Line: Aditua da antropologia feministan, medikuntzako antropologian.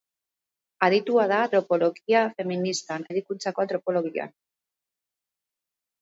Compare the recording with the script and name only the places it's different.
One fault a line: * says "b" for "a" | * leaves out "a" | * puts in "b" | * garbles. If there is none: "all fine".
all fine